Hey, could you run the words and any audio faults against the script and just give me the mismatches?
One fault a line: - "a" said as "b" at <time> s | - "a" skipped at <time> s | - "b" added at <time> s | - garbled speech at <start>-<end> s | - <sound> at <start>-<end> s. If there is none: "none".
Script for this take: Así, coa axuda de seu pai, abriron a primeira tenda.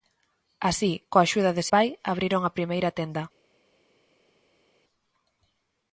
- "seu" skipped at 1.6 s